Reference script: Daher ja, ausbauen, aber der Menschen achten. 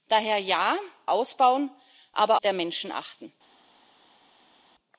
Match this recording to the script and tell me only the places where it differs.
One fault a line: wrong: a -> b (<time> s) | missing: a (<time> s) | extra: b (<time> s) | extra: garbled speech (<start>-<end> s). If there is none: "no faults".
no faults